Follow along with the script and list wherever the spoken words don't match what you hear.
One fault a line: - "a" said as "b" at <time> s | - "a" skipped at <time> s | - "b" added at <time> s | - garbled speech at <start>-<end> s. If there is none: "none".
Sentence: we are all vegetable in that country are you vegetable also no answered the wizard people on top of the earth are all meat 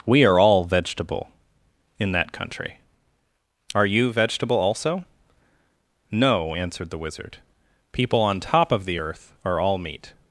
none